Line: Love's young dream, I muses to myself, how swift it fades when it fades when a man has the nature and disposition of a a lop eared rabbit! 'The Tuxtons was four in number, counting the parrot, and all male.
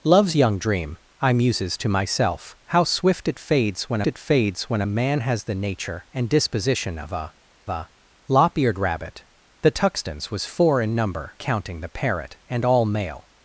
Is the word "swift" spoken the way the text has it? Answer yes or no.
yes